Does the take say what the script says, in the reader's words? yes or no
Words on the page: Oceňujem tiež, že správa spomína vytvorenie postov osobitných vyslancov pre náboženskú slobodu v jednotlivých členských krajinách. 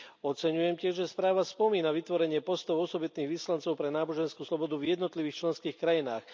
yes